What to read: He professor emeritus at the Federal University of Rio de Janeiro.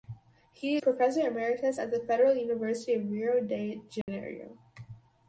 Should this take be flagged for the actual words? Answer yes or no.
no